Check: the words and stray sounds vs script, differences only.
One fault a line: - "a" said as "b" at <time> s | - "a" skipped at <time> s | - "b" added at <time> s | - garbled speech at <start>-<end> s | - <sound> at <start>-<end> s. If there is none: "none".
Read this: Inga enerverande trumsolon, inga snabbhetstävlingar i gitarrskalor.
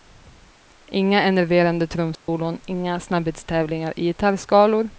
- dropout at 2.2-2.3 s